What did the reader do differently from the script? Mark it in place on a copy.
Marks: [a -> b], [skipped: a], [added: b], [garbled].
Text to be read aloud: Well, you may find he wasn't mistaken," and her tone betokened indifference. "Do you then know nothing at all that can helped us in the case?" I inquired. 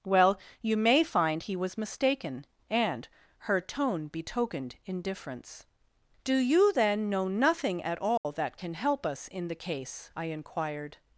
Well, you may find he [wasn't -> was] mistaken," and her tone betokened indifference. "Do you then know nothing at all that can [helped -> help] us in the case?" I inquired.